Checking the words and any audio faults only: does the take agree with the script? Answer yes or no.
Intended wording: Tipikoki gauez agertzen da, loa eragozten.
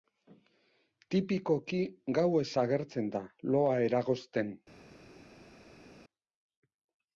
yes